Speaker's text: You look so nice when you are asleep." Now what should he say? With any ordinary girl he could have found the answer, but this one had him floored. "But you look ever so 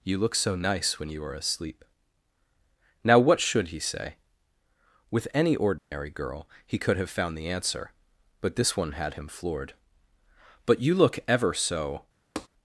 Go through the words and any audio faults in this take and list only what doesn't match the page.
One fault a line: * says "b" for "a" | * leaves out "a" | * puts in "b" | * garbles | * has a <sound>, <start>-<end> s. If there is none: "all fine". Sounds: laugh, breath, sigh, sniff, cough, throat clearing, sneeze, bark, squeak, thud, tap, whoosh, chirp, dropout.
* has a dropout, 5.8-5.9 s
* has a tap, 12.4-12.5 s